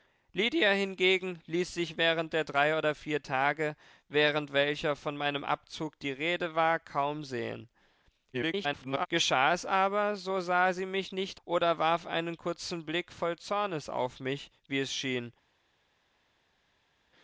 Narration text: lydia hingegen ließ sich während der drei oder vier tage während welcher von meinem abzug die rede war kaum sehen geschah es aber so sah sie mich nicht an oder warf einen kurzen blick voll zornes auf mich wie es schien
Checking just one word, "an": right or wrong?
wrong